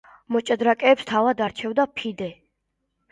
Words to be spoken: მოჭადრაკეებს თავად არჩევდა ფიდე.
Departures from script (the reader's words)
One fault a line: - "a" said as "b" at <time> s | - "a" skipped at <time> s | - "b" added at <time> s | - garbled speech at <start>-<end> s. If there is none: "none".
none